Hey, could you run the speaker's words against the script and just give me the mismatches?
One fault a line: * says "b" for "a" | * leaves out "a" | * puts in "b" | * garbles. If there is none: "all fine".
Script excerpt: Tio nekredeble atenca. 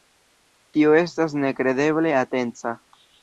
* puts in "estas"